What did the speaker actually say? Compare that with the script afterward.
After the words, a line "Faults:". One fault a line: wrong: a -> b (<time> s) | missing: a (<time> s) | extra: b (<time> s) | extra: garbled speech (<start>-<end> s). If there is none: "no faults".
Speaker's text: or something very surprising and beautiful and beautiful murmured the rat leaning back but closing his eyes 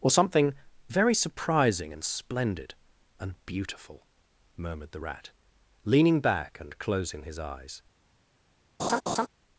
or something very surprising and splendid and beautiful murmured the rat leaning back and closing his eyes
Faults:
wrong: beautiful -> splendid (2.0 s)
wrong: but -> and (6.6 s)